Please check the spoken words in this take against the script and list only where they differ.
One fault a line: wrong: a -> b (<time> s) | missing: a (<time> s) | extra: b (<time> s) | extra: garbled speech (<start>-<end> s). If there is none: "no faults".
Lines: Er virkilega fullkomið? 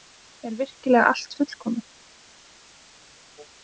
extra: allt (1.1 s)